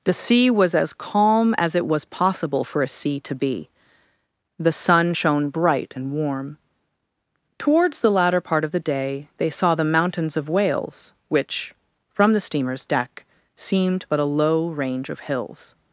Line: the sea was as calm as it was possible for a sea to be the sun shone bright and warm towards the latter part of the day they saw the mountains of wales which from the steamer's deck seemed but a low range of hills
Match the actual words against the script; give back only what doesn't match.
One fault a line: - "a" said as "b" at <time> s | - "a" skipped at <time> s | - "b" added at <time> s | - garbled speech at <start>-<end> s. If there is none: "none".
none